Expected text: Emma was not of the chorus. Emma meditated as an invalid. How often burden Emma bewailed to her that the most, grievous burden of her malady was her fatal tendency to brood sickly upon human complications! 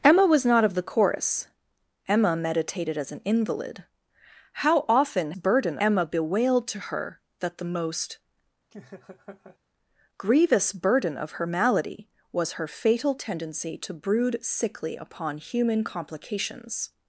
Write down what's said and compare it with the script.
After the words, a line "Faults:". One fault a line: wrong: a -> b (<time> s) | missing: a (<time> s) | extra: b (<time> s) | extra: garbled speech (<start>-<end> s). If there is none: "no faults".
Emma was not of the chorus. Emma meditated as an invalid. How often burden Emma bewailed to her that the most, grievous burden of her malady was her fatal tendency to brood sickly upon human complications!
Faults:
no faults